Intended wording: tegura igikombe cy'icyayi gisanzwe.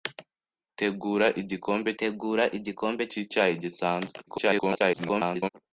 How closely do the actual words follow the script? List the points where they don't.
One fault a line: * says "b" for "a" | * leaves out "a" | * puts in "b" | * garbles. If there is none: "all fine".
* puts in "tegura igikombe"
* garbles